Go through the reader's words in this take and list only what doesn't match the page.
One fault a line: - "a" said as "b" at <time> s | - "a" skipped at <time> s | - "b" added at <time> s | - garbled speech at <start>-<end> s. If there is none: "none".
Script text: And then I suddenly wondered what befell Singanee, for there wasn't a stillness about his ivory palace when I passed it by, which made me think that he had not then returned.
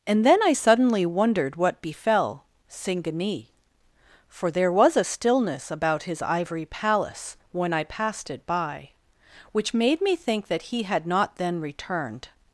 - "wasn't" said as "was" at 4.7 s